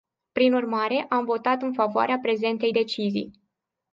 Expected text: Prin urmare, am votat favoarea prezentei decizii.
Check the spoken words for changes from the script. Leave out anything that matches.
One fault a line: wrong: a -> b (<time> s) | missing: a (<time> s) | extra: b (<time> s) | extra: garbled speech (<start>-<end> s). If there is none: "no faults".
extra: în (1.6 s)